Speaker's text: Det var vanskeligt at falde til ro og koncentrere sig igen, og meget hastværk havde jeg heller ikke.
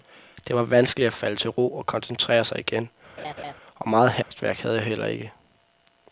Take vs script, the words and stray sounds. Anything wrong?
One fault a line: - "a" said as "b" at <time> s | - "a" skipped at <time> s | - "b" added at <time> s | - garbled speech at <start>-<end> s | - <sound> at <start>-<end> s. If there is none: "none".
- laugh at 3.2-3.5 s
- dropout at 4.2-4.3 s